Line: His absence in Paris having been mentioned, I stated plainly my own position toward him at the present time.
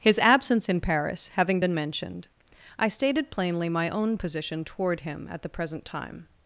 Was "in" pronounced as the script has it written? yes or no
yes